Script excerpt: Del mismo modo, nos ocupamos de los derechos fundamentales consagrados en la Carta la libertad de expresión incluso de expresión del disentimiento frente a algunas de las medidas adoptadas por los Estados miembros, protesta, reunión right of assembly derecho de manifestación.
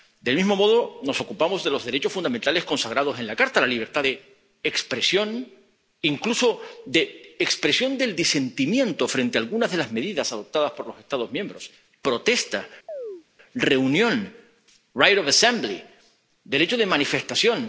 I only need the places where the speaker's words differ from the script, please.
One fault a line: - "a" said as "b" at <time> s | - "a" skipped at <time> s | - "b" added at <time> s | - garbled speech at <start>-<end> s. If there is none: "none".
none